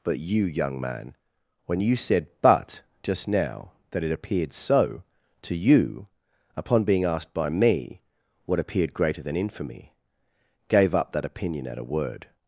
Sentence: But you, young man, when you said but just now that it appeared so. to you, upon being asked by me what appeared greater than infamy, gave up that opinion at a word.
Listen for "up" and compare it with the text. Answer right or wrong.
right